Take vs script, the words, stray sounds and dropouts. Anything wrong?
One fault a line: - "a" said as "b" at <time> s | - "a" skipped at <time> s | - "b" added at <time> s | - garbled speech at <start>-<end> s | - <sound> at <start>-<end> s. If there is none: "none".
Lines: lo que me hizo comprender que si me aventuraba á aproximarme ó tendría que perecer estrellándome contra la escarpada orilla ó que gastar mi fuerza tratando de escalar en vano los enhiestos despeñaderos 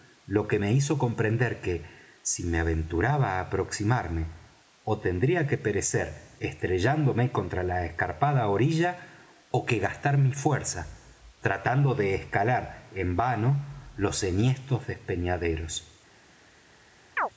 - chirp at 17.2-17.3 s